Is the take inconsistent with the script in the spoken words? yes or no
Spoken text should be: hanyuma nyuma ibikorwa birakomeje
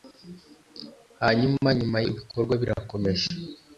no